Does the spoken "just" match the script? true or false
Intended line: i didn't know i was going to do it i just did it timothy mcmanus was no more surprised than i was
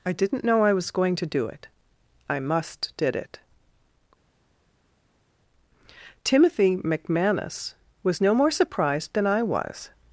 false